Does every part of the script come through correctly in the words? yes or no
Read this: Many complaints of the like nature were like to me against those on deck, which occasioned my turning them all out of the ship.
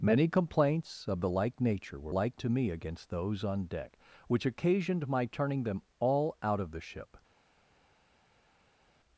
yes